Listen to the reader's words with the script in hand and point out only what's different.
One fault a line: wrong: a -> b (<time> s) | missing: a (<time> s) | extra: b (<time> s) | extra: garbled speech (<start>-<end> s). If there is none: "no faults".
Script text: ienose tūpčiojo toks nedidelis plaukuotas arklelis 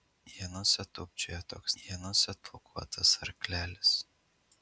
wrong: nedidelis -> ienose (1.8 s)